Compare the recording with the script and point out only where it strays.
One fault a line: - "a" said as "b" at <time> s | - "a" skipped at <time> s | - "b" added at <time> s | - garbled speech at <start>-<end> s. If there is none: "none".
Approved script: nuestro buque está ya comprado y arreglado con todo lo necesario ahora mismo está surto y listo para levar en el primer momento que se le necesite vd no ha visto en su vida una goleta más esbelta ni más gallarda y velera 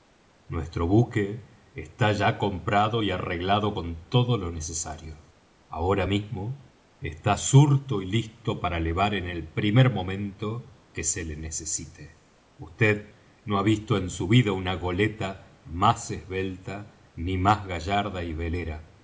none